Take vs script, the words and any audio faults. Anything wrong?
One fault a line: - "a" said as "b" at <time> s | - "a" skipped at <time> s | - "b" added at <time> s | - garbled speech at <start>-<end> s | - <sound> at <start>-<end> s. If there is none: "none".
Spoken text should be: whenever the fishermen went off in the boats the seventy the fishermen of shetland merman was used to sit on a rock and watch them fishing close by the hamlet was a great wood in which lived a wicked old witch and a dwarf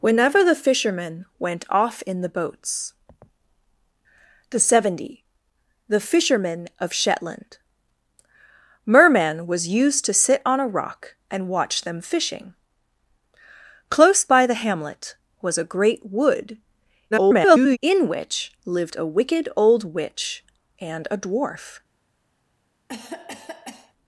- garbled speech at 17.1-17.8 s
- cough at 22.9-23.9 s